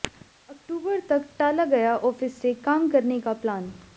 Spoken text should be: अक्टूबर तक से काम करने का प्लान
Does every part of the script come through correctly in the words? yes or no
no